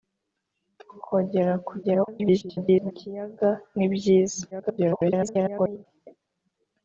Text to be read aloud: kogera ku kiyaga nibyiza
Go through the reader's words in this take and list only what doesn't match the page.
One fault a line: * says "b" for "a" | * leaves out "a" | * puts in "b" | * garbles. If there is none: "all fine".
* garbles
* garbles